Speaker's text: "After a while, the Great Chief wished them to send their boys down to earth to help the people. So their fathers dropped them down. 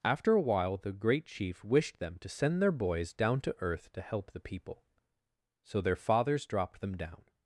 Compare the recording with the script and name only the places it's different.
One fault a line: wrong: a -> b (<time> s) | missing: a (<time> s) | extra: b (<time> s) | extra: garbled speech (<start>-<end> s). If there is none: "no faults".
no faults